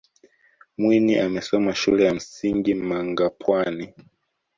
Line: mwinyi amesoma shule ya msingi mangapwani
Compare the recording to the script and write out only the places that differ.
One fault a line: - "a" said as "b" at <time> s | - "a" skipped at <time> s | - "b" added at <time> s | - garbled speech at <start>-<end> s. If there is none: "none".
none